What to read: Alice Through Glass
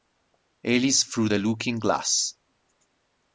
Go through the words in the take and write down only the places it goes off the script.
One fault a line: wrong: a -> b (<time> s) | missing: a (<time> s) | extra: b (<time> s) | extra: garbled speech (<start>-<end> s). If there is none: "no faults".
extra: the Looking (1.3 s)